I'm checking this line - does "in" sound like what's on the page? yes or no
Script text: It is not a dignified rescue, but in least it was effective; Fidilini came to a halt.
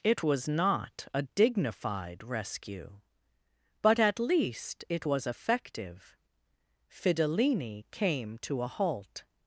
no